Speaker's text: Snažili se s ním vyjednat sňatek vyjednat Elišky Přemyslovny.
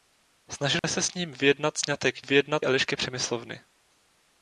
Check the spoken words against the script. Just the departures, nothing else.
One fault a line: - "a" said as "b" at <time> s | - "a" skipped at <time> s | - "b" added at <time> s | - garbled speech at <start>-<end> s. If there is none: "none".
none